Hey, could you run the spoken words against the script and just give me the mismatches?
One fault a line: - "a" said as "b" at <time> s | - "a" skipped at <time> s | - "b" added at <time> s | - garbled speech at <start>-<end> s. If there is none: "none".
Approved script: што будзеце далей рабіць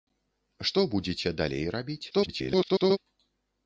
- garbled speech at 2.1-3.0 s